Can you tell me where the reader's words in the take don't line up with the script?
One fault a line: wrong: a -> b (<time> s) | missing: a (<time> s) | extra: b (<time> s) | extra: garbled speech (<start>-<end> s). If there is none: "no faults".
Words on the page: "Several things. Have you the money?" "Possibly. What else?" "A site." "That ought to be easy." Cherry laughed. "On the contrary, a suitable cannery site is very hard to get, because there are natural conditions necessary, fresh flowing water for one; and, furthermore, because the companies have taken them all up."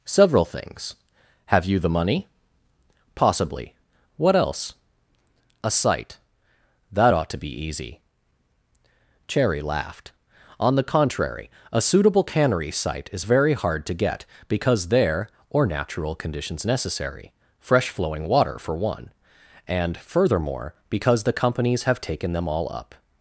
wrong: are -> or (15.5 s)